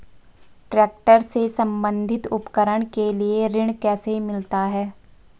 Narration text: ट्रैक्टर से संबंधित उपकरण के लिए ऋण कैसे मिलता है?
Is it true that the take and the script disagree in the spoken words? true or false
false